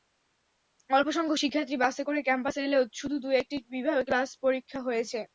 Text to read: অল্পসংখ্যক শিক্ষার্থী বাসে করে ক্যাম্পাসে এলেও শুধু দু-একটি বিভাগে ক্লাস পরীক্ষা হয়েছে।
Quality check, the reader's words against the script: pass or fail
pass